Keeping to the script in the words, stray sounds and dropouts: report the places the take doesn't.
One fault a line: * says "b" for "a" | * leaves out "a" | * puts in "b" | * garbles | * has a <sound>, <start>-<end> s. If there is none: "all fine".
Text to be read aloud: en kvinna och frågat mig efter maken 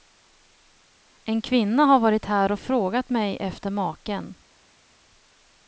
* puts in "har varit här"